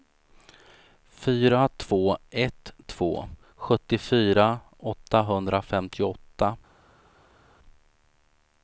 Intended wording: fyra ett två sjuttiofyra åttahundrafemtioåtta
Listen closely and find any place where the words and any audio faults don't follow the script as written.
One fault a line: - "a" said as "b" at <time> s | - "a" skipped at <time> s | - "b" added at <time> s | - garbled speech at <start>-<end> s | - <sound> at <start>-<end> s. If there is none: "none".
- "två" added at 1.8 s